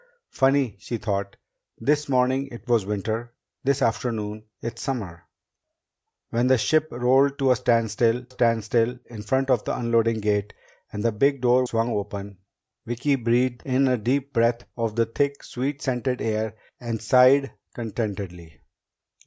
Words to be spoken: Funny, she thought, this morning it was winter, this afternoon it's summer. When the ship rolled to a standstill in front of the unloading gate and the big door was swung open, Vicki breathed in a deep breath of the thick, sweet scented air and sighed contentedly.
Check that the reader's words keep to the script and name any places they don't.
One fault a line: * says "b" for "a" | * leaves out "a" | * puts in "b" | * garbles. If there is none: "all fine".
* puts in "standstill"
* leaves out "was"